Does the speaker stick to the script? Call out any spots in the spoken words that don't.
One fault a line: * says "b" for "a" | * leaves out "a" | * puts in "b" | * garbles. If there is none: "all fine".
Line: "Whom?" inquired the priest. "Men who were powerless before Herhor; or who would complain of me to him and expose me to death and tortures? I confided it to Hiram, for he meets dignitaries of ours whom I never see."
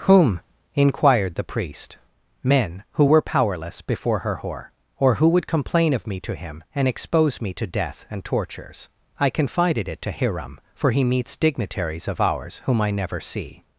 all fine